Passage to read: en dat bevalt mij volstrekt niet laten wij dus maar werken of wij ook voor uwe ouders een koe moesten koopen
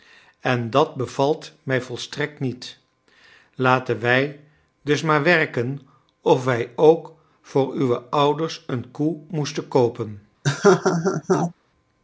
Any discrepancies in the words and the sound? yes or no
yes